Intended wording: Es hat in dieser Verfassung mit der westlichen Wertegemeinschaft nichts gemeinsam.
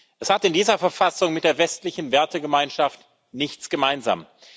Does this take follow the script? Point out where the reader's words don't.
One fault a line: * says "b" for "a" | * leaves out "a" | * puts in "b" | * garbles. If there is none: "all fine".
all fine